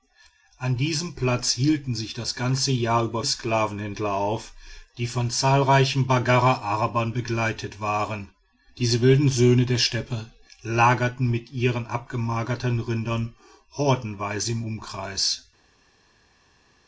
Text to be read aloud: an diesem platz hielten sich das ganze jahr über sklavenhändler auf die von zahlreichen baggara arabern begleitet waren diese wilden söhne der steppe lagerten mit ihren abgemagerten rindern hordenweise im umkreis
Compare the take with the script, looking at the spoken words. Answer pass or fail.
pass